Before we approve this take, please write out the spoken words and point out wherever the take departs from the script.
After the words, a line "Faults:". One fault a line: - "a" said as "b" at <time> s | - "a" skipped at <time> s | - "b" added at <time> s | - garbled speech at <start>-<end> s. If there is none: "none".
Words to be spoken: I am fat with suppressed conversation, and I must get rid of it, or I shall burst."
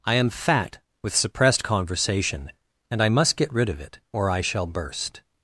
I am fat with suppressed conversation, and I must get rid of it, or I shall burst."
Faults:
none